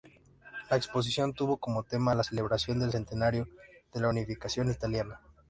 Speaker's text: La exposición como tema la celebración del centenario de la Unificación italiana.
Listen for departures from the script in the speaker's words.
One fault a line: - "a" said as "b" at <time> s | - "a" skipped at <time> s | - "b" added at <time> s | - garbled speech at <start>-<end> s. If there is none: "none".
- "tuvo" added at 1.3 s